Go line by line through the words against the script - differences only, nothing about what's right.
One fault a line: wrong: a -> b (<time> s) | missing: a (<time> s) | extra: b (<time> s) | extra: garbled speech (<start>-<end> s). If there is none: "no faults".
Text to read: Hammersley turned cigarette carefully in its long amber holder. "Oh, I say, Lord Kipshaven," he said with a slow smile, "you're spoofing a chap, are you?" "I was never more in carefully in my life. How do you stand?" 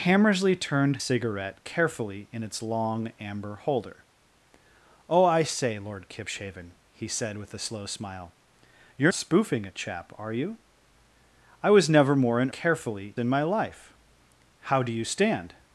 no faults